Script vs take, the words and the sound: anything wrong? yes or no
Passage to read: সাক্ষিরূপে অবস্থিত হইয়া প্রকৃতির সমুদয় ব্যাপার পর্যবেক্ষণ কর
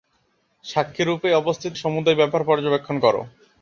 yes